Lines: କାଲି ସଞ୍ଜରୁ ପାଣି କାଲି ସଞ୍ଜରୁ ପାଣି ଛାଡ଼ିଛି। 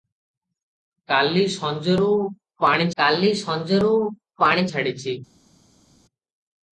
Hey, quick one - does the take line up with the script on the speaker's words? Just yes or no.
yes